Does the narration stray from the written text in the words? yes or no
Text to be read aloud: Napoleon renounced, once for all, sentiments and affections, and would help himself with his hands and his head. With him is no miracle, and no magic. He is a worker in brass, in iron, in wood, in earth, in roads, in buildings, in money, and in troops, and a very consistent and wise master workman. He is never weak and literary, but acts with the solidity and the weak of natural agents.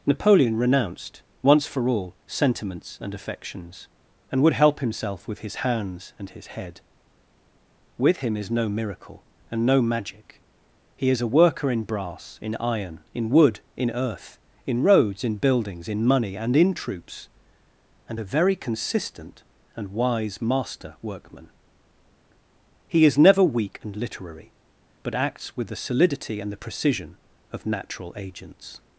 yes